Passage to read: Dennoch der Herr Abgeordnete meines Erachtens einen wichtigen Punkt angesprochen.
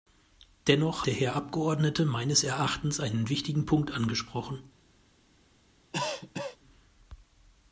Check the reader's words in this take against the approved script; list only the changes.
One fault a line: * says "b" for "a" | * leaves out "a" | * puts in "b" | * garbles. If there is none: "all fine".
all fine